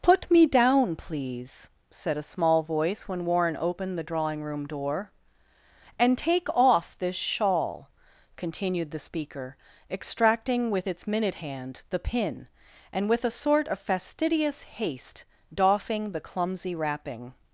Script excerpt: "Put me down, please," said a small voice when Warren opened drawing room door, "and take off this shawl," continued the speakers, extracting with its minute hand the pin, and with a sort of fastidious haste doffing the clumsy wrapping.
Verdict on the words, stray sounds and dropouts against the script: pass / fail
fail